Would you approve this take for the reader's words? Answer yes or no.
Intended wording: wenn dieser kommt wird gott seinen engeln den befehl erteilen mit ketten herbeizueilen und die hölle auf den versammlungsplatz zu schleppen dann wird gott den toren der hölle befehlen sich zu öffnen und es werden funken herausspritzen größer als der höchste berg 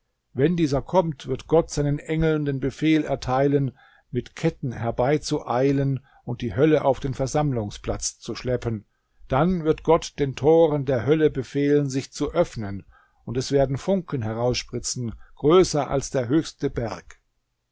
yes